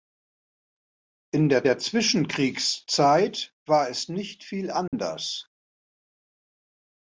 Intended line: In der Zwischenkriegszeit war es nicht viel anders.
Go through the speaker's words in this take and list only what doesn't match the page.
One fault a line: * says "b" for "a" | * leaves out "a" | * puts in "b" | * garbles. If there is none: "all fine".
* puts in "der"